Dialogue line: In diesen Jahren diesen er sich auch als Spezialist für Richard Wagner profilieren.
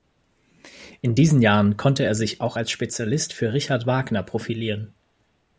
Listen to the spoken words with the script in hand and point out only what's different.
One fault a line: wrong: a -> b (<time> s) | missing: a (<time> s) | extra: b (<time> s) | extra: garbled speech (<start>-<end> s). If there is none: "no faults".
wrong: diesen -> konnte (1.8 s)